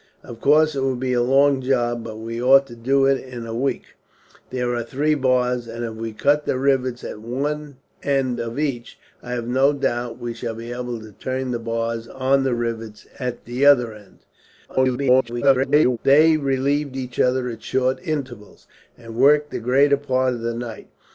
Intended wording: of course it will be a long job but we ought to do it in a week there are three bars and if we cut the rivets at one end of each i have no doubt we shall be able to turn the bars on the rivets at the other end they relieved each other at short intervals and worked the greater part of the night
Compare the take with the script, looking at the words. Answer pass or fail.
fail